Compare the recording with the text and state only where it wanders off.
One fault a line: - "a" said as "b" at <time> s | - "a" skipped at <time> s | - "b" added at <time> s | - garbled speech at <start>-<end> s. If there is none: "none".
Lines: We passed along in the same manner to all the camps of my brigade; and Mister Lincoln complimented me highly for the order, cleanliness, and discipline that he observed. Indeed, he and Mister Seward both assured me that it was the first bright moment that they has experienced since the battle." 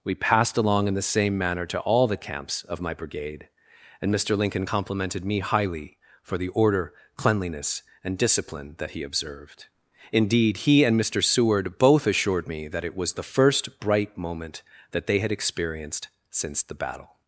- "has" said as "had" at 15.2 s